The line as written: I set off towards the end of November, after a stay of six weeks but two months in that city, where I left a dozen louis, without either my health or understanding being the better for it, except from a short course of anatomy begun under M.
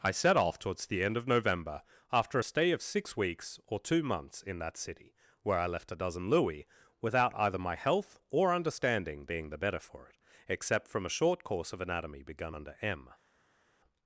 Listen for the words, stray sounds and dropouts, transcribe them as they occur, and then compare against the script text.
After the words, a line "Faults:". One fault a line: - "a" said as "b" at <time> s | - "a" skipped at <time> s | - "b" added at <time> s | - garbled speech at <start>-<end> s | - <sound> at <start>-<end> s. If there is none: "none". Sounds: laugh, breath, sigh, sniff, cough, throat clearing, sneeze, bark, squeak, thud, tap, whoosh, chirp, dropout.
I set off towards the end of November, after a stay of six weeks or two months in that city, where I left a dozen louis, without either my health or understanding being the better for it, except from a short course of anatomy begun under M.
Faults:
- "but" said as "or" at 3.7 s